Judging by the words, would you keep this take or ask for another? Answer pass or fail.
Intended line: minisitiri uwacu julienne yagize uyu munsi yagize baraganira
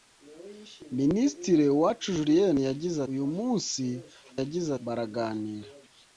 pass